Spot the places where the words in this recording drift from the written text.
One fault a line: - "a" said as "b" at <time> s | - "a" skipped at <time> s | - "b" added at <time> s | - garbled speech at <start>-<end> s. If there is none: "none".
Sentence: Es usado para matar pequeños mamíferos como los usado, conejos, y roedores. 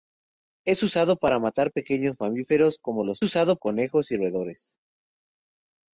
none